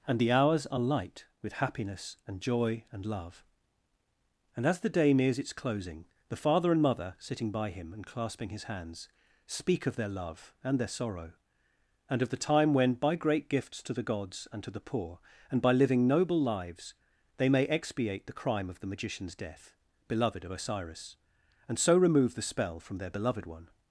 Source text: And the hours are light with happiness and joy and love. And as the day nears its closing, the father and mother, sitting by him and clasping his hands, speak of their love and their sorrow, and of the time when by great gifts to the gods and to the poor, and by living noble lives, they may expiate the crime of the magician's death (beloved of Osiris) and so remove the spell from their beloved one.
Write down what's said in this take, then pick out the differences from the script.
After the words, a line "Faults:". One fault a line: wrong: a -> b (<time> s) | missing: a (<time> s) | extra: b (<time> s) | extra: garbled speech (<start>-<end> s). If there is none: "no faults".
And the hours are light with happiness and joy and love. And as the day nears its closing, the father and mother, sitting by him and clasping his hands, speak of their love and their sorrow, and of the time when by great gifts to the gods and to the poor, and by living noble lives, they may expiate the crime of the magician's death (beloved of Osiris) and so remove the spell from their beloved one.
Faults:
no faults